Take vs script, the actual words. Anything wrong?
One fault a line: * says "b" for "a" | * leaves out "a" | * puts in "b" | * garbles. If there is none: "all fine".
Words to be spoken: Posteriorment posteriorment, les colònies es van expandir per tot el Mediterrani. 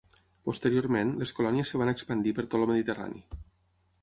* leaves out "posteriorment"